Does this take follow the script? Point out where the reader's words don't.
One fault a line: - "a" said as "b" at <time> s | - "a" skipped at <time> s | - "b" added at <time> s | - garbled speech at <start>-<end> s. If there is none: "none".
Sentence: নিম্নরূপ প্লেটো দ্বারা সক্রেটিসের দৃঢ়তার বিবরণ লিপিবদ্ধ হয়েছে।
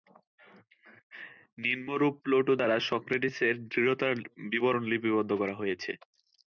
- "করা" added at 5.4 s